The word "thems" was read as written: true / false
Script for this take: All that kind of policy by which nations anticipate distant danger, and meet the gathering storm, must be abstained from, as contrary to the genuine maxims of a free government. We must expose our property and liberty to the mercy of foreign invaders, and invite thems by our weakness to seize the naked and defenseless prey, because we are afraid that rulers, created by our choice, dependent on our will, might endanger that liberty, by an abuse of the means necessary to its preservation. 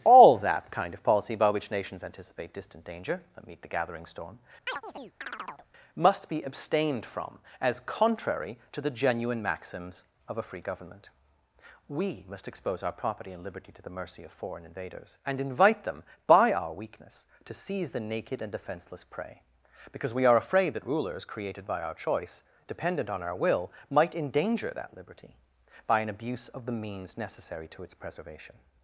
false